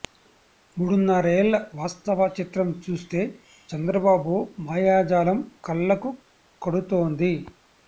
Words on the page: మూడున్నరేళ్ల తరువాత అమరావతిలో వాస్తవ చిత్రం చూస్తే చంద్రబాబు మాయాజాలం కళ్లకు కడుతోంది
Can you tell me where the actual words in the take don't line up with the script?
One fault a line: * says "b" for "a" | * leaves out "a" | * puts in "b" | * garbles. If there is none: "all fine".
* leaves out "తరువాత అమరావతిలో"